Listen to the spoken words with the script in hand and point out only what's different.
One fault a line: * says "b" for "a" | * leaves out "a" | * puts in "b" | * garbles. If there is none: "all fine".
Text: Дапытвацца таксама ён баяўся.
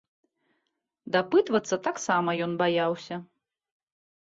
all fine